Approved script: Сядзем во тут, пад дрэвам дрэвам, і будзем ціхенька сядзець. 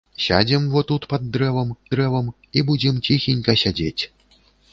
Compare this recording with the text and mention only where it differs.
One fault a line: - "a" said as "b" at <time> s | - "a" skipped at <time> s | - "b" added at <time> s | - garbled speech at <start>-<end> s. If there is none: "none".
none